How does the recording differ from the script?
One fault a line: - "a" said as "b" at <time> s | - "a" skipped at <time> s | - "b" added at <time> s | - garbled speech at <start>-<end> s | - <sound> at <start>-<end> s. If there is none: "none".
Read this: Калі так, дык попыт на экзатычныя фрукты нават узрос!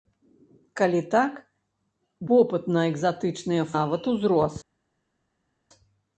- "дык" skipped at 1.3 s
- "фрукты" skipped at 3.7 s